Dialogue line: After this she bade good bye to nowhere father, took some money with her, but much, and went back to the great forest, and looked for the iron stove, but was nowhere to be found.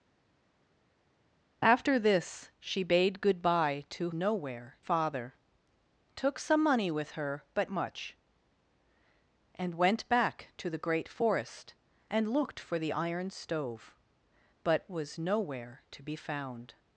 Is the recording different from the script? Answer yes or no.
no